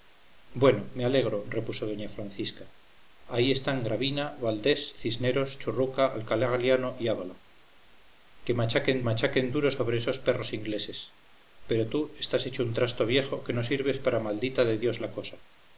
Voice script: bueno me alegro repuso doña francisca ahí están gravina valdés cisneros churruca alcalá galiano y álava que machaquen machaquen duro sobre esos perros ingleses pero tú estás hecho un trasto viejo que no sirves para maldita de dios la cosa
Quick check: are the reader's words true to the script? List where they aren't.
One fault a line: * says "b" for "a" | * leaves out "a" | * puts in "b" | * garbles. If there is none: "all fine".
all fine